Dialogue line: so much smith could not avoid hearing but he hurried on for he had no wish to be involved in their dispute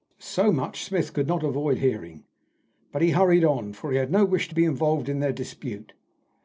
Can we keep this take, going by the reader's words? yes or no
yes